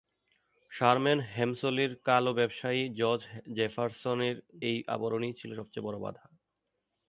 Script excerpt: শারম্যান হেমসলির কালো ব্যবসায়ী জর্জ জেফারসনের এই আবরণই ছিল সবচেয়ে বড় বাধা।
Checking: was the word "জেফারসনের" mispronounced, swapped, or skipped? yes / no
no